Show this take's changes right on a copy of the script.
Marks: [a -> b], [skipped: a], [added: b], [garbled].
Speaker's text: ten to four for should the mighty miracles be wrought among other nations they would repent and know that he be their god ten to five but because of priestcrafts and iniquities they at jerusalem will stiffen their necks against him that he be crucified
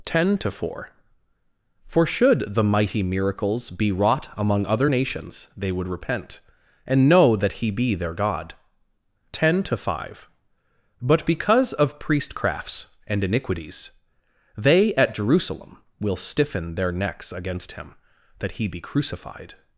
ten to four for should the mighty miracles be wrought among other nations they would repent and know that he be their god ten to five but because of priestcrafts and iniquities they at jerusalem will stiffen their necks against him that he be crucified